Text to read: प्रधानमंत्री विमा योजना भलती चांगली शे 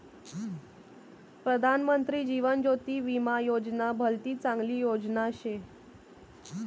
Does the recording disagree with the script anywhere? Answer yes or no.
yes